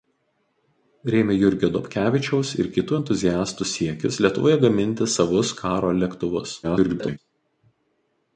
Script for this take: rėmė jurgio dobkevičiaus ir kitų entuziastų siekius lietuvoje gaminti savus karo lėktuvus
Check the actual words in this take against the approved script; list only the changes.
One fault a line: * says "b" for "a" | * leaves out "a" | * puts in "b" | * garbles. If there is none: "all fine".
* garbles